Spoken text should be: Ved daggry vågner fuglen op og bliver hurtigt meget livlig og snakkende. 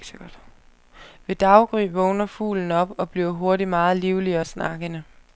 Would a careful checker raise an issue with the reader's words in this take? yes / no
no